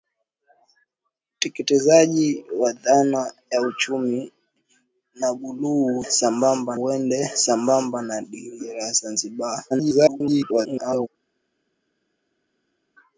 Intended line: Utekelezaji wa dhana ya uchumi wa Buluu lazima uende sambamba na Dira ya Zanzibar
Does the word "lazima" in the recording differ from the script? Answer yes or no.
yes